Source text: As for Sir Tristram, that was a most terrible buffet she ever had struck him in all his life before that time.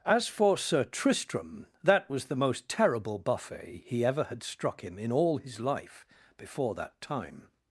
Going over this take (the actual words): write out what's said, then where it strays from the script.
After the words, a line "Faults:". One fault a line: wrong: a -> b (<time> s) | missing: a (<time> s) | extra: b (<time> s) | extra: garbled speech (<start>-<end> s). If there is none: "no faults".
As for Sir Tristram, that was the most terrible buffet he ever had struck him in all his life before that time.
Faults:
wrong: a -> the (2.2 s)
wrong: she -> he (3.9 s)